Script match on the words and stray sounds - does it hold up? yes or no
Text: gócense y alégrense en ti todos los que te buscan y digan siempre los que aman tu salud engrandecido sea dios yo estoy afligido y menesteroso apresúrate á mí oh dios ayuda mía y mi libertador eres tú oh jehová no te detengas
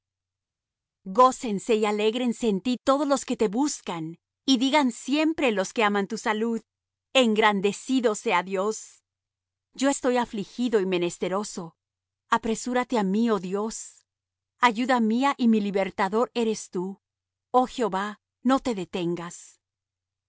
yes